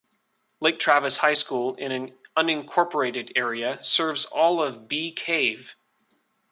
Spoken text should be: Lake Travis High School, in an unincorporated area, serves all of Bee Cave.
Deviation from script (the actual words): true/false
false